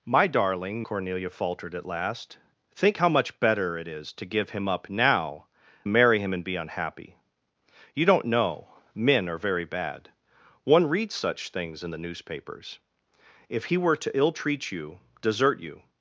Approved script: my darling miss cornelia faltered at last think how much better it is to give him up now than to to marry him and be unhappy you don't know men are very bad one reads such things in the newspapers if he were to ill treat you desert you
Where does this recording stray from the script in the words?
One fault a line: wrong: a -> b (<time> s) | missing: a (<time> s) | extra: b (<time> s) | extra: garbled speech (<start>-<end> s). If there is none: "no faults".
missing: miss (0.8 s)
missing: than to to (5.5 s)